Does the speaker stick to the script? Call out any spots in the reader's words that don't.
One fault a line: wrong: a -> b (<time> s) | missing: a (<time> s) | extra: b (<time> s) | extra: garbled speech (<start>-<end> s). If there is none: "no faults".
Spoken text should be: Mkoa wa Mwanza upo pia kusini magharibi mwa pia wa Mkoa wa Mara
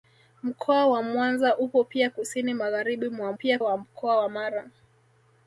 no faults